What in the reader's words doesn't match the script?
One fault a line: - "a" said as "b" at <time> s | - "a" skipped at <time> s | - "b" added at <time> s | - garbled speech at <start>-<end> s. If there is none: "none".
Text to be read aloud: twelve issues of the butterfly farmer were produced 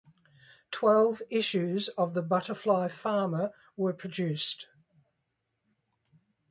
none